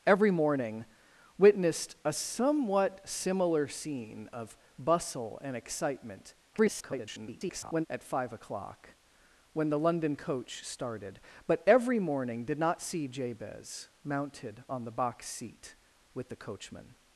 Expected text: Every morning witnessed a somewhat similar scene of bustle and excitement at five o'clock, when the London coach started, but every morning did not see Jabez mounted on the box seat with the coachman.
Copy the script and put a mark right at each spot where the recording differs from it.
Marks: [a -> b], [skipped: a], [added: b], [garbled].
Every morning witnessed a somewhat similar scene of bustle and excitement [garbled] at five o'clock, when the London coach started, but every morning did not see Jabez mounted on the box seat with the coachman.